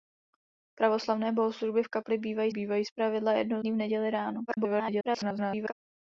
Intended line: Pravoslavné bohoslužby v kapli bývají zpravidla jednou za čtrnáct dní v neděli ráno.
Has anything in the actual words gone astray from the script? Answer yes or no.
yes